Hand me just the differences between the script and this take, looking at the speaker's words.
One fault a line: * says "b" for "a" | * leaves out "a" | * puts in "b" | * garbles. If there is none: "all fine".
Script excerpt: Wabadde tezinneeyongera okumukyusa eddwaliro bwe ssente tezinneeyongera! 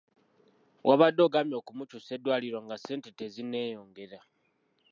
* says "ogambye" for "tezinneeyongera"
* says "nga" for "bwe"